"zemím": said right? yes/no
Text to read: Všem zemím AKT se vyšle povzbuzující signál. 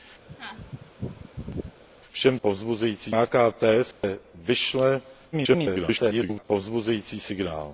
no